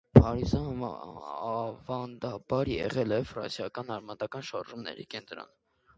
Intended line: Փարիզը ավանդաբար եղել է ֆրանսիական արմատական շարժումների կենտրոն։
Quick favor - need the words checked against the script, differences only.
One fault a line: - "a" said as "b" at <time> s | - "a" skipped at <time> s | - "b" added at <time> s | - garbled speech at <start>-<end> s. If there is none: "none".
none